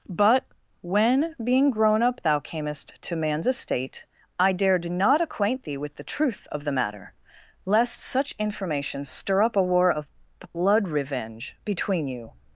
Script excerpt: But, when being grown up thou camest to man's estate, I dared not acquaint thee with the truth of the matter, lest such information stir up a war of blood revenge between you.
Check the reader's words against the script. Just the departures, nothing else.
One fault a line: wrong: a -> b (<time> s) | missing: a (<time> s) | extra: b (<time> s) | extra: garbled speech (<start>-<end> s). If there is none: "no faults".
no faults